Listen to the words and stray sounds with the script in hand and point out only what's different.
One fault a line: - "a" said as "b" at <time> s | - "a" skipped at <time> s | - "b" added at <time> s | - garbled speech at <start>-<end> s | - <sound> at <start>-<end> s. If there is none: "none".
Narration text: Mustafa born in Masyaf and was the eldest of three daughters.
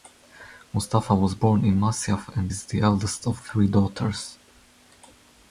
- "was" added at 1.1 s
- "was" said as "is" at 2.5 s